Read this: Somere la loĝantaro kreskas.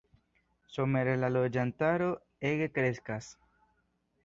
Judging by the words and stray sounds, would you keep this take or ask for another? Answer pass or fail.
fail